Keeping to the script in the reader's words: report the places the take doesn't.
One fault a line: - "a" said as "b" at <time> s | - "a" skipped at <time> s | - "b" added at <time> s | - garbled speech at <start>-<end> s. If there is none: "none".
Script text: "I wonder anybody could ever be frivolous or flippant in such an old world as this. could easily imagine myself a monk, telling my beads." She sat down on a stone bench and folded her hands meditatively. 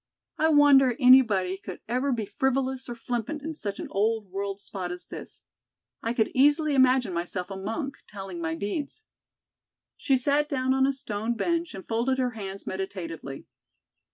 - "spot" added at 4.6 s
- "I" added at 6.0 s